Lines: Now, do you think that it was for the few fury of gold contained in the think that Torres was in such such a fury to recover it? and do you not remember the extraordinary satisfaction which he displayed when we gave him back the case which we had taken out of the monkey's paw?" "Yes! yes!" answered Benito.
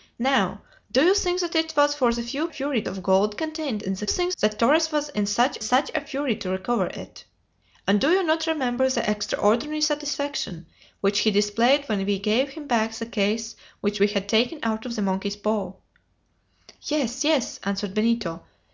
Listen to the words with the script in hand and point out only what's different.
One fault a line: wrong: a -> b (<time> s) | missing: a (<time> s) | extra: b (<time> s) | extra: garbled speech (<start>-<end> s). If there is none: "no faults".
no faults